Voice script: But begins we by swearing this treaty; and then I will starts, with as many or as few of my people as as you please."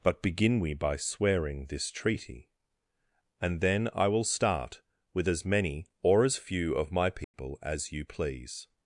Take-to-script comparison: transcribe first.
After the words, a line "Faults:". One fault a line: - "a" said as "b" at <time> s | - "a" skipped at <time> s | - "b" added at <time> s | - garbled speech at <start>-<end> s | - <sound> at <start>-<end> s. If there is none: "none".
But begin we by swearing this treaty; and then I will start, with as many or as few of my people as you please."
Faults:
- "begins" said as "begin" at 0.2 s
- "starts" said as "start" at 4.2 s
- dropout at 7.2-7.3 s
- "as" skipped at 7.9 s